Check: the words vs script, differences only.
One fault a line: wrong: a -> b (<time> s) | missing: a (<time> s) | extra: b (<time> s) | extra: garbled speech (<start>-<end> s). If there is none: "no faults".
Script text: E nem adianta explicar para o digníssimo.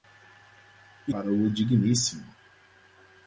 missing: nem adianta explicar (1.1 s)